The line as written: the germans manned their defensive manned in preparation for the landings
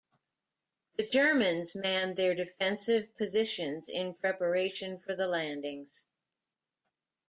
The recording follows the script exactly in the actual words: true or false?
false